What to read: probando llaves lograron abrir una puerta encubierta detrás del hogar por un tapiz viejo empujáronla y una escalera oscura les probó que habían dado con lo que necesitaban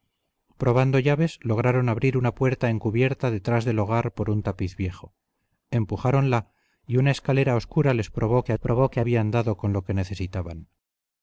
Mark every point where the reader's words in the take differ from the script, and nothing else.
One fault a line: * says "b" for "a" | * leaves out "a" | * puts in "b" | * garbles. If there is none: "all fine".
* puts in "probó que"